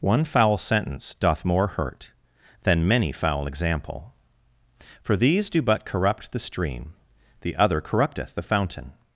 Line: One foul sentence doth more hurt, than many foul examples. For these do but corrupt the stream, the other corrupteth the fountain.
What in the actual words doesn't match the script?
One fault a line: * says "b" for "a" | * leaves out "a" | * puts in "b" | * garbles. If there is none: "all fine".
* says "example" for "examples"